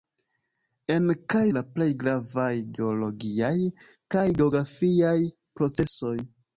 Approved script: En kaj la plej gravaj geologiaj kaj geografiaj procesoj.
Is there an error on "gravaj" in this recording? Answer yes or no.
no